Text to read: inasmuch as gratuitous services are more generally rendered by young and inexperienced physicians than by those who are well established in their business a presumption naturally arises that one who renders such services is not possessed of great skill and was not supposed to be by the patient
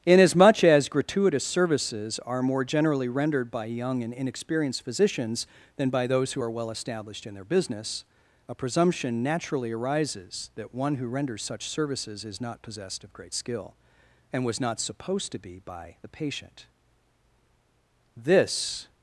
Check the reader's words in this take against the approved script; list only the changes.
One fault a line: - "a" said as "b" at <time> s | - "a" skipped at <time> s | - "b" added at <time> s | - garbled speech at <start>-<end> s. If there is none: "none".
- "this" added at 18.2 s